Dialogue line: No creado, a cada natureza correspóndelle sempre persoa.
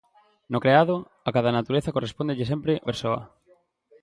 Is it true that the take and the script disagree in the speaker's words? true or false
false